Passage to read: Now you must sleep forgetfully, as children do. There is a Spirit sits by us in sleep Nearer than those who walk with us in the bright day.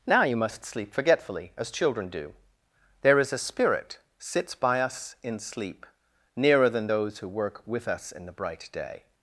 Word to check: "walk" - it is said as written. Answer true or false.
false